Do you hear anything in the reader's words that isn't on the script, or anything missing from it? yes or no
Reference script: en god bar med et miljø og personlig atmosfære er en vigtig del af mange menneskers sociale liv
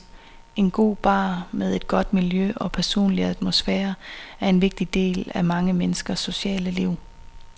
yes